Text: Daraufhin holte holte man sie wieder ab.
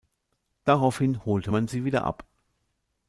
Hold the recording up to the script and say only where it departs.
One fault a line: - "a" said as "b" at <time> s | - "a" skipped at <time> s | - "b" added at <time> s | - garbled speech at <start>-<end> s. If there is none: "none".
- "holte" skipped at 1.5 s